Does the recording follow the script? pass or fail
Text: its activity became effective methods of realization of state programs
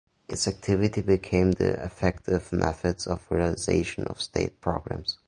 fail